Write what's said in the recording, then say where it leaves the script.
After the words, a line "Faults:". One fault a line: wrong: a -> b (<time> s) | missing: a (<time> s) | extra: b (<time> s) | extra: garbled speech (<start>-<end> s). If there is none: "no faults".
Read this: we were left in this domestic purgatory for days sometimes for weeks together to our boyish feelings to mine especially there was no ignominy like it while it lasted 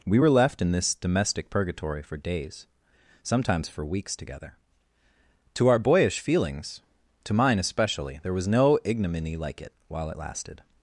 we were left in this domestic purgatory for days sometimes for weeks together to our boyish feelings to mine especially there was no ignominy like it while it lasted
Faults:
no faults